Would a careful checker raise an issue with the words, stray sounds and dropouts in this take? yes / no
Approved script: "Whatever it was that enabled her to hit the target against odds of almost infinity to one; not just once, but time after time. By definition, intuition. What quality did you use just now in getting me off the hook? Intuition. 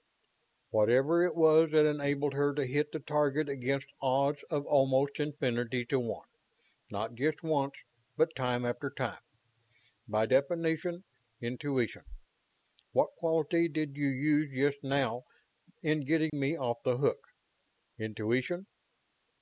yes